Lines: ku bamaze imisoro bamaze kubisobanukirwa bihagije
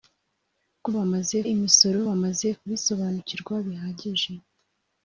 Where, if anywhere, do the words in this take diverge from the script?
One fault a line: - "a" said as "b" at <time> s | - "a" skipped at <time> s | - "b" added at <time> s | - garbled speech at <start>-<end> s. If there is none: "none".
none